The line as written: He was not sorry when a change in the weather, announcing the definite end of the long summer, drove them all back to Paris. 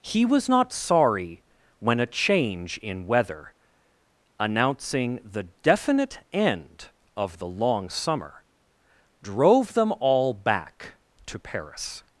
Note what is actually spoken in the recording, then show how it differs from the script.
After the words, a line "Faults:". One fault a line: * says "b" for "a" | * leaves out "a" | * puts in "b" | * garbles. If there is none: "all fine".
He was not sorry when a change in weather, announcing the definite end of the long summer, drove them all back to Paris.
Faults:
* leaves out "the"